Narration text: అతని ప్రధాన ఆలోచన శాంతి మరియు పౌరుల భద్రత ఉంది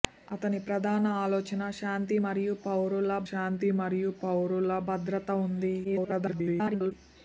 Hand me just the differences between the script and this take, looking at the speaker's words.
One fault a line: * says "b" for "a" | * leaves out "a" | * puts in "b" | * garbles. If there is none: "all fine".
* puts in "శాంతి మరియు పౌరుల"
* garbles